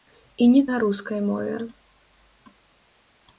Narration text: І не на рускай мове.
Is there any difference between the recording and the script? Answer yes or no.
no